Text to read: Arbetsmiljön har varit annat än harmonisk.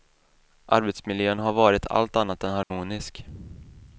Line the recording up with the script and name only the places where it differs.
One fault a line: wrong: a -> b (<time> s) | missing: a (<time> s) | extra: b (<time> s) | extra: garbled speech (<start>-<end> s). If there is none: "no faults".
extra: allt (1.9 s)